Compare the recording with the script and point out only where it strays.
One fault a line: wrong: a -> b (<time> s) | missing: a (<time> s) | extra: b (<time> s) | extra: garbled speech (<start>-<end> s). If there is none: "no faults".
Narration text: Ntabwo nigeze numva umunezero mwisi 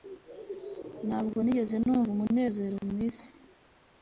no faults